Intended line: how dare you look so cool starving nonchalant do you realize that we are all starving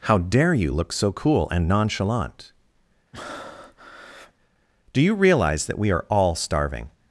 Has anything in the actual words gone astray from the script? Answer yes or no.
yes